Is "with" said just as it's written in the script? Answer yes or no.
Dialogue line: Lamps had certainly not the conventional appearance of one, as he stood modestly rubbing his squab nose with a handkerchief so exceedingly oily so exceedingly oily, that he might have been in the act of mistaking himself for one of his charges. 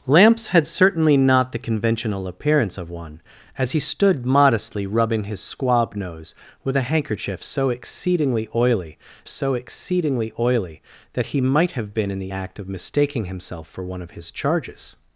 yes